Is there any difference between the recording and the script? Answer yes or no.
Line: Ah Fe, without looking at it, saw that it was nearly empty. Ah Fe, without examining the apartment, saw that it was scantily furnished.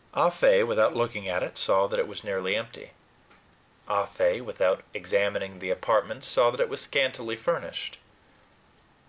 no